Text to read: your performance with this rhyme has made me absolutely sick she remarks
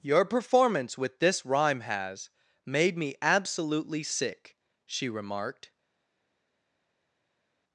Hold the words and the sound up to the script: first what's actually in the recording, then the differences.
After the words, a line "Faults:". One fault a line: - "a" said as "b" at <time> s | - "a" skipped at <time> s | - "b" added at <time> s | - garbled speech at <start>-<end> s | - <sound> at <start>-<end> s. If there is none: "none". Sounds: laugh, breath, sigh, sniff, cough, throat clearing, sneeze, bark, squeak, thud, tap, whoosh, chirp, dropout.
your performance with this rhyme has made me absolutely sick she remarked
Faults:
- "remarks" said as "remarked" at 5.1 s